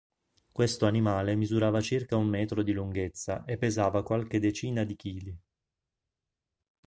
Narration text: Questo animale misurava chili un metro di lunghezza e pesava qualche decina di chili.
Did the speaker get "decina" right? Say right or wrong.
right